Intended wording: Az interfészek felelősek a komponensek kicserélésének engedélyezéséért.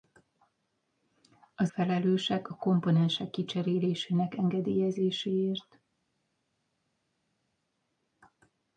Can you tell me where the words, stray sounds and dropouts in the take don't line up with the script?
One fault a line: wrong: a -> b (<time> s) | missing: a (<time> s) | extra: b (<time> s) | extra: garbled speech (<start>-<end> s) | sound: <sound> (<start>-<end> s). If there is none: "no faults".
missing: interfészek (1.7 s)